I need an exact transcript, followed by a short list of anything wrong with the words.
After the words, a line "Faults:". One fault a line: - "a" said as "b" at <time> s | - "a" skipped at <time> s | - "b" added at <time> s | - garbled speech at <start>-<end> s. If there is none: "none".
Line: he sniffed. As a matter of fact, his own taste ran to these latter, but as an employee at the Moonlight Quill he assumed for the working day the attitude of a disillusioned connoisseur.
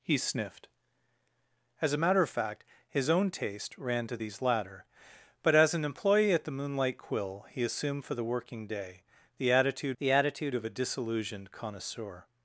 he sniffed. As a matter of fact, his own taste ran to these latter, but as an employee at the Moonlight Quill he assumed for the working day the attitude the attitude of a disillusioned connoisseur.
Faults:
- "the attitude" added at 10.0 s